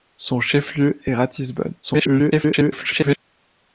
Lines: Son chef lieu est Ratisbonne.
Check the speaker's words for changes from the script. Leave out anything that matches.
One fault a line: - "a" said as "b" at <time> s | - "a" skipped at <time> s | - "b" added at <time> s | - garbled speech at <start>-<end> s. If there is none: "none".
- garbled speech at 1.8-3.2 s